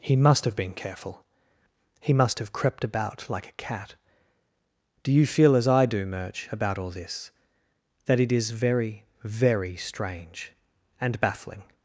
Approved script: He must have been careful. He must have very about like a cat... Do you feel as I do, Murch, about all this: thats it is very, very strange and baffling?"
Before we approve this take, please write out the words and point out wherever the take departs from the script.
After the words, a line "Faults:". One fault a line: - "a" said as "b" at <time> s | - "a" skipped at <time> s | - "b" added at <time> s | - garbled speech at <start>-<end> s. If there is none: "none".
He must have been careful. He must have crept about like a cat... Do you feel as I do, Murch, about all this: that it is very, very strange and baffling?"
Faults:
- "very" said as "crept" at 2.5 s
- "thats" said as "that" at 8.1 s